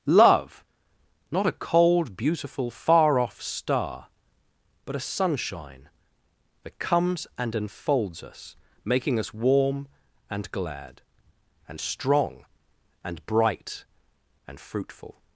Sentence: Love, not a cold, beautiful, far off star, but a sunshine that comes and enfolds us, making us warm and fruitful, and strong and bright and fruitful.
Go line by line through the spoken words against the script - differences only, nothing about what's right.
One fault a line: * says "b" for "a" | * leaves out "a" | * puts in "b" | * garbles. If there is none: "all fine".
* says "glad" for "fruitful"